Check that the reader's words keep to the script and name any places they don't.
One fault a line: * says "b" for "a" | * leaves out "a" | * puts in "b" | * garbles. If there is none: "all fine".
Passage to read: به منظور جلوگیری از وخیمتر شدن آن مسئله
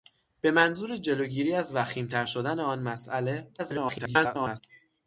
* garbles